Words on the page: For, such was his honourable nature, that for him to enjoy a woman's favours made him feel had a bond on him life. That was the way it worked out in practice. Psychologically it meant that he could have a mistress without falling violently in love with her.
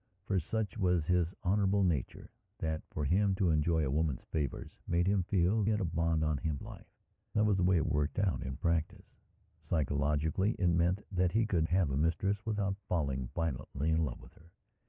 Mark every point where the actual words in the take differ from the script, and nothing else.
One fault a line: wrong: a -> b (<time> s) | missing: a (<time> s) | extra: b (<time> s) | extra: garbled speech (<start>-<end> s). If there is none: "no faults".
no faults